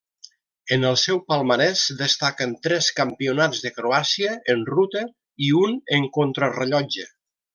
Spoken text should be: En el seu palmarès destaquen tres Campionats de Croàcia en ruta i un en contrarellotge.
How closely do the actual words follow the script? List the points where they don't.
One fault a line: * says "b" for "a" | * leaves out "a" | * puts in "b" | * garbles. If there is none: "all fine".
all fine